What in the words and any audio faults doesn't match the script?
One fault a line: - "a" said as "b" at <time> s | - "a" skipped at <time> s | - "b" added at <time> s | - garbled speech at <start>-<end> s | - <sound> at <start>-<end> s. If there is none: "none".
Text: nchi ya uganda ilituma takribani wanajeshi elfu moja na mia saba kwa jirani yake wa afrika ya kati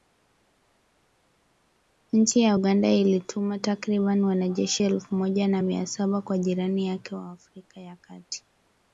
none